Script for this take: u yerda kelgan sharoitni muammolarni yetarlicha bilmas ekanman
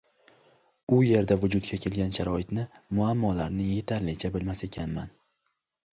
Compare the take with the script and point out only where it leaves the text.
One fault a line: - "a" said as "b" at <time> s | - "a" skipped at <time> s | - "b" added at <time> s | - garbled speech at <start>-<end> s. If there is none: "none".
- "vujudga" added at 1.4 s